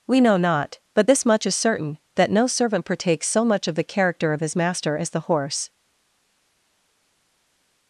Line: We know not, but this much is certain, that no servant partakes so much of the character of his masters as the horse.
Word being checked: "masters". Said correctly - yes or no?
no